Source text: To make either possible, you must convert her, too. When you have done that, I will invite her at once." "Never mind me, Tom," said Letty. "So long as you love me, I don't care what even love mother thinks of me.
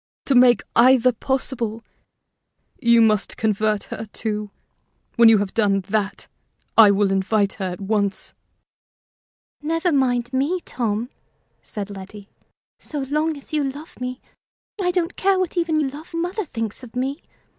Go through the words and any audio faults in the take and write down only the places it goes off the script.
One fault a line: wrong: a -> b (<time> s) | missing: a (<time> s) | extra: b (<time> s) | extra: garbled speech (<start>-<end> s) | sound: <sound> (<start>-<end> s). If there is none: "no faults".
no faults